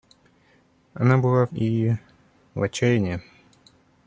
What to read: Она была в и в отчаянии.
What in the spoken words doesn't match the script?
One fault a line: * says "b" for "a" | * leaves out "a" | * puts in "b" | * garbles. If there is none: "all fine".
all fine